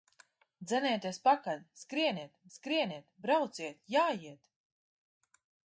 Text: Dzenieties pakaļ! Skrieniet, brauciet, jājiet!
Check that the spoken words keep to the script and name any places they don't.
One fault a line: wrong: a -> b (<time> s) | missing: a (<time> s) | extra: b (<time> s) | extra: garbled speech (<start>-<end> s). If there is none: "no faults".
extra: skrieniet (2.5 s)